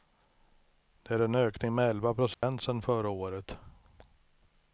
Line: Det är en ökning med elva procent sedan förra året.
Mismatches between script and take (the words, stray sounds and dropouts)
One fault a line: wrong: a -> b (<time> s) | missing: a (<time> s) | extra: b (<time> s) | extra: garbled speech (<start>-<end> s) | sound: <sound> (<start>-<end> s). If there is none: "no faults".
sound: dropout (2.3-2.4 s)